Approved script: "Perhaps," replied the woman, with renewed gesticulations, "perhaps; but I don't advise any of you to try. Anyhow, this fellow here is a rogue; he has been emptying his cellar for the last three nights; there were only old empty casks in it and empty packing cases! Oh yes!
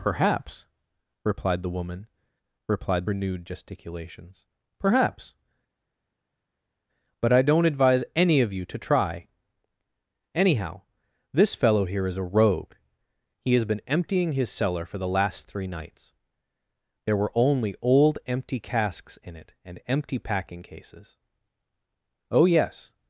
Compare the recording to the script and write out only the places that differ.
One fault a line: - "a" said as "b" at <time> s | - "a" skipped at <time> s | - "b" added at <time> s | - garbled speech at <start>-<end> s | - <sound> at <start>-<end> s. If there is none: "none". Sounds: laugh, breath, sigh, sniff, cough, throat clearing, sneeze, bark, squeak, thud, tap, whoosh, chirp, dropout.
- "with" said as "replied" at 2.7 s